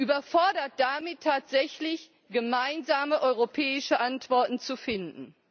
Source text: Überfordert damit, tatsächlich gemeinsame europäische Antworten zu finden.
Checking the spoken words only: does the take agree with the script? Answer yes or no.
yes